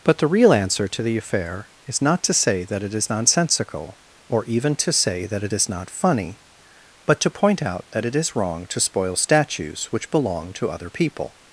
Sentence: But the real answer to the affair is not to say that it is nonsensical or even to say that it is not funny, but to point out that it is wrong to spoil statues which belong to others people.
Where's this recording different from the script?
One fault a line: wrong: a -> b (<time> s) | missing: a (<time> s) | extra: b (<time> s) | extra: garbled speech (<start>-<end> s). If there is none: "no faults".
wrong: others -> other (10.7 s)